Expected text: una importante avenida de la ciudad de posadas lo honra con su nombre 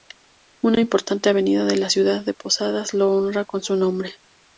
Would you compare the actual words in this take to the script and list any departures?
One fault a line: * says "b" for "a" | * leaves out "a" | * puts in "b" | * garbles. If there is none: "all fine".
all fine